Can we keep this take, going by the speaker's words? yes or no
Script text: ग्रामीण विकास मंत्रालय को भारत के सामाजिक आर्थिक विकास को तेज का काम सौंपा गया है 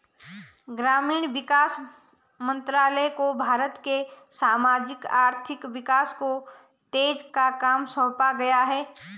yes